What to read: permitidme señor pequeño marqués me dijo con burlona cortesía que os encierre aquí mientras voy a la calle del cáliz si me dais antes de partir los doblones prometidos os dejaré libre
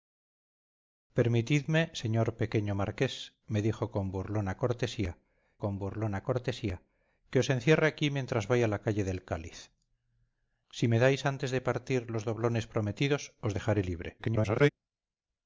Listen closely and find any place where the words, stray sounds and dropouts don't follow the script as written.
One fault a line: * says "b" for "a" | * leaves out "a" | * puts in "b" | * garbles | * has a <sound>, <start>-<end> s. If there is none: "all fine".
* puts in "con burlona cortesía"
* garbles